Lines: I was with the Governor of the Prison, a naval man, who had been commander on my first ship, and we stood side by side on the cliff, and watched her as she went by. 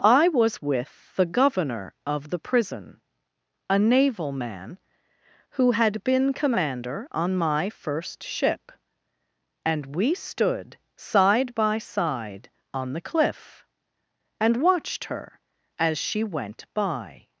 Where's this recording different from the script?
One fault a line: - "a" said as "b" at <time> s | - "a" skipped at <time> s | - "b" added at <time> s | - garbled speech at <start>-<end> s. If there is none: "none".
none